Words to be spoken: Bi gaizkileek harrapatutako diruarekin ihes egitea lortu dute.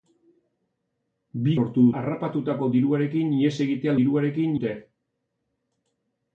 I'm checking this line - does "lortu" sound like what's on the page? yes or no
no